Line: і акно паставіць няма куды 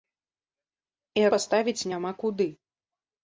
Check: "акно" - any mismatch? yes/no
yes